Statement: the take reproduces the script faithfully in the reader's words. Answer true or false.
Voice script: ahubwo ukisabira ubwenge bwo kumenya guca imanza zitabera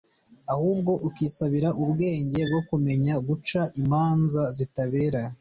true